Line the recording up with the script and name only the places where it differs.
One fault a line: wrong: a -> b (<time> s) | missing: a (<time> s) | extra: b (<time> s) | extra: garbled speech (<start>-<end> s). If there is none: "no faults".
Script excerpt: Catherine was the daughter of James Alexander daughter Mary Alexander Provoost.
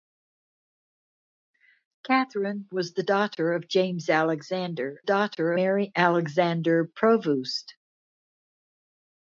no faults